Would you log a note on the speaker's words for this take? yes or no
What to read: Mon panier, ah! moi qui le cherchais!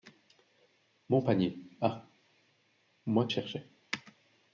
yes